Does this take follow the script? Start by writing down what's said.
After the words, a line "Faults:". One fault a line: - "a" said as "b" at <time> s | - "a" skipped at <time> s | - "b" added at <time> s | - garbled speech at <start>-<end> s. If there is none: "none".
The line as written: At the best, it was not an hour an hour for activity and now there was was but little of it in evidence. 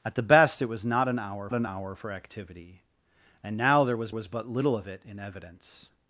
At the best, it was not an hour an hour for activity and now there was was but little of it in evidence.
Faults:
none